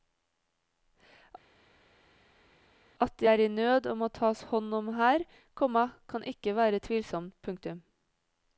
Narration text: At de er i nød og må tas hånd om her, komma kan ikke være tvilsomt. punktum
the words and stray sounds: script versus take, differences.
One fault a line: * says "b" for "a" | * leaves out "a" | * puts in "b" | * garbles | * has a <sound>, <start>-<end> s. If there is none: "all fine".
all fine